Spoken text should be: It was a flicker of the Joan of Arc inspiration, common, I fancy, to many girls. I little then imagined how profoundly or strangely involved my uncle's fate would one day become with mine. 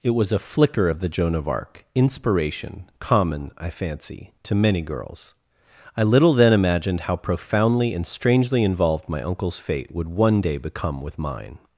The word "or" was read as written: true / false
false